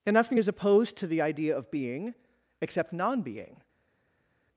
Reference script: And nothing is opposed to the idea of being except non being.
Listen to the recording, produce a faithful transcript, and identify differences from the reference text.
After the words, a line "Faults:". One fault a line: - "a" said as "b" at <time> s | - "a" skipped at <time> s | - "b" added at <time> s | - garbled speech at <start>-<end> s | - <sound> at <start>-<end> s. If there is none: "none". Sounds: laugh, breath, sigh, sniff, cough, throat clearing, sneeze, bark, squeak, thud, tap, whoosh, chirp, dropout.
And nothing is opposed to the idea of being except non being.
Faults:
none